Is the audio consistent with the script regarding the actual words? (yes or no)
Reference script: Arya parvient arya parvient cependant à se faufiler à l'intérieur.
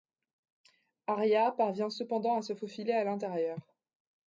no